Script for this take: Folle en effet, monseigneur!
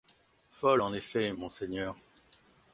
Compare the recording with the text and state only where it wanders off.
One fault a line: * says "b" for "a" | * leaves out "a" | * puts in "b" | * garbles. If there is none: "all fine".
all fine